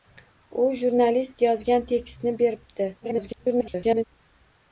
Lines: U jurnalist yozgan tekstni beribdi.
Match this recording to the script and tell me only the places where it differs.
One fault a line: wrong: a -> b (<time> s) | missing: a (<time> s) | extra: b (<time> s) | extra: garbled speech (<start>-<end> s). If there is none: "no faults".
extra: garbled speech (3.0-4.0 s)